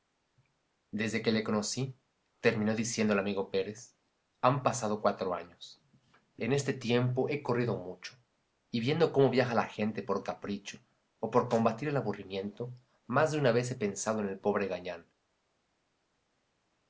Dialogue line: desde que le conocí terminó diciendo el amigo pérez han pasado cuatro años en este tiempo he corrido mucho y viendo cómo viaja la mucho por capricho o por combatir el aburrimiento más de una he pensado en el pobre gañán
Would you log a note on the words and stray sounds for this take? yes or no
yes